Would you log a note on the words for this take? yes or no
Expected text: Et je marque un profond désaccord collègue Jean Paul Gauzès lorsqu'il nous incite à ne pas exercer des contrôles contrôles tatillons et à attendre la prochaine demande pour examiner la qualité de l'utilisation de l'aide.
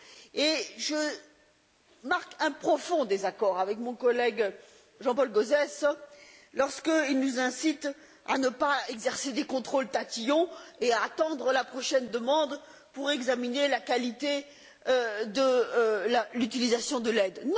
yes